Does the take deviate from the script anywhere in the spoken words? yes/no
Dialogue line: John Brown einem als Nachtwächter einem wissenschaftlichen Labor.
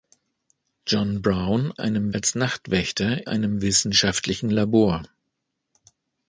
no